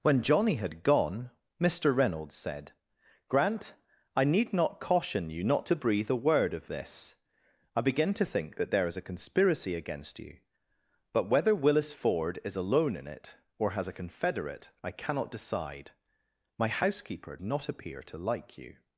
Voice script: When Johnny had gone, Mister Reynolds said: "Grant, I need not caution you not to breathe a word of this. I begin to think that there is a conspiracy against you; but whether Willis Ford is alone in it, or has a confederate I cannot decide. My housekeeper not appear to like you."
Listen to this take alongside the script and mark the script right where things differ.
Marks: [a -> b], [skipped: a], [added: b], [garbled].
When Johnny had gone, Mister Reynolds said: "Grant, I need not caution you not to breathe a word of this. I begin to think that there is a conspiracy against you; but whether Willis Ford is alone in it, or has a confederate I cannot decide. My housekeeper not appear to like you."